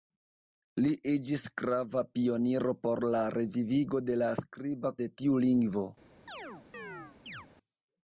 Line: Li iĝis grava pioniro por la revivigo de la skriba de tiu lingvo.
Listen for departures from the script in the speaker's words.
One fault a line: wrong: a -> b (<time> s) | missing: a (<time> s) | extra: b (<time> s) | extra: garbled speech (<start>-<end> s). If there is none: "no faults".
no faults